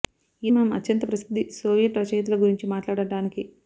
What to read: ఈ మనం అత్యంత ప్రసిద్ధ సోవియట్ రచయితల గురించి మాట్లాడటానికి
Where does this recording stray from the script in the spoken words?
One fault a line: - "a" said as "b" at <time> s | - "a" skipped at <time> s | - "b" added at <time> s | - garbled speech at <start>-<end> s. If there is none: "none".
none